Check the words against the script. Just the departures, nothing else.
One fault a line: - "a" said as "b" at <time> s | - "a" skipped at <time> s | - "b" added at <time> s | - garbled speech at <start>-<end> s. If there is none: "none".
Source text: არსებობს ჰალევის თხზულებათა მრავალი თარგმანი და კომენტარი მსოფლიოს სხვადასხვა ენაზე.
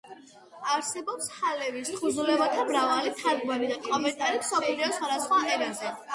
none